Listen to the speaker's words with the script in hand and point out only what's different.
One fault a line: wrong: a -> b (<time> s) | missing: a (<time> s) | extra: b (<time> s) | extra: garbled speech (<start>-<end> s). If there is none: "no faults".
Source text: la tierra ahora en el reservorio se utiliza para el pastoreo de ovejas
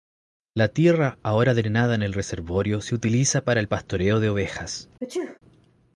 extra: drenada (1.5 s)